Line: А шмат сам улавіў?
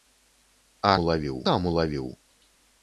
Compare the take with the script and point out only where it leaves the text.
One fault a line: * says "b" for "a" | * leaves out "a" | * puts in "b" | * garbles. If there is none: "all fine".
* says "улавіў" for "шмат"